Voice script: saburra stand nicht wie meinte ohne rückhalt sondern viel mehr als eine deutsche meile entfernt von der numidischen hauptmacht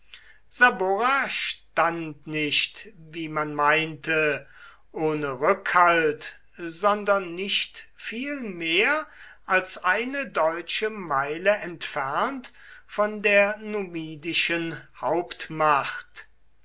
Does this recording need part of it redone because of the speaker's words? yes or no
yes